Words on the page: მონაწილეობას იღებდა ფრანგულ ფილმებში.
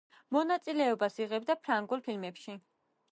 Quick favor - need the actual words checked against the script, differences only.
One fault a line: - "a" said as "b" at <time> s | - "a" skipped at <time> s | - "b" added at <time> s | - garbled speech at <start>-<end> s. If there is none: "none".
none